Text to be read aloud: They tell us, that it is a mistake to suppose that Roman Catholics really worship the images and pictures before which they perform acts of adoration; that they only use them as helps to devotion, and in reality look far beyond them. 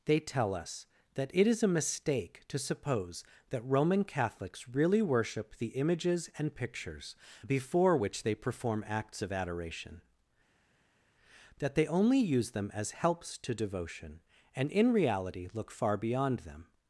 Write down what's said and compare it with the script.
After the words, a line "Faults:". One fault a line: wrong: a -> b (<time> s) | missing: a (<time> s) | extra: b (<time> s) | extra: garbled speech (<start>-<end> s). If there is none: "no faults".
They tell us, that it is a mistake to suppose that Roman Catholics really worship the images and pictures before which they perform acts of adoration; that they only use them as helps to devotion, and in reality look far beyond them.
Faults:
no faults